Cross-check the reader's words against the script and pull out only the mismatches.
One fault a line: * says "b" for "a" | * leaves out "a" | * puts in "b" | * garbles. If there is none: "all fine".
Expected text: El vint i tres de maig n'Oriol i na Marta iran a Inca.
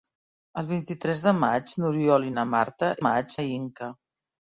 * says "maig" for "iran"